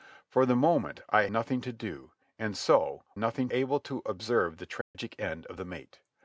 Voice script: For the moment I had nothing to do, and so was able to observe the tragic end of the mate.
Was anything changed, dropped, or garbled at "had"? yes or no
yes